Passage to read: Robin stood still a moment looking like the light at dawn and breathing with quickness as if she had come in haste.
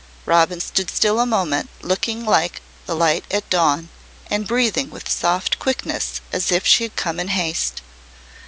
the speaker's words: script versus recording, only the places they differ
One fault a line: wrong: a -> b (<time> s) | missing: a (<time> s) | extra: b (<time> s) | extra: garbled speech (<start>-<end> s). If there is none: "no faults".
extra: soft (5.1 s)